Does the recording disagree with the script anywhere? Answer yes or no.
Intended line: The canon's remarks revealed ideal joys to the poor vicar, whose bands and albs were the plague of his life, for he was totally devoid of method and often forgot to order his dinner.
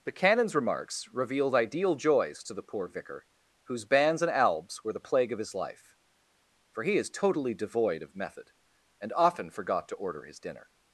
yes